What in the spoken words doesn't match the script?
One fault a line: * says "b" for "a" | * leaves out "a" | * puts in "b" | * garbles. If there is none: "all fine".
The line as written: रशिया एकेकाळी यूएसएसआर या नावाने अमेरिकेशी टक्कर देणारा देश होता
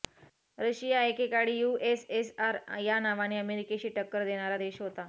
all fine